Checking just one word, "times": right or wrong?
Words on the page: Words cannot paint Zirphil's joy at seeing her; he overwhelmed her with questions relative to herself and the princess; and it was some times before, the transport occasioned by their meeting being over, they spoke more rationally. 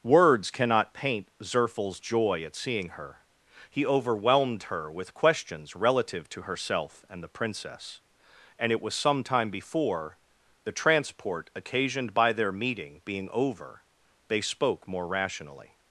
wrong